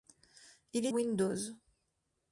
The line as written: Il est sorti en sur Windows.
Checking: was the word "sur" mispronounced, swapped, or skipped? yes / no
yes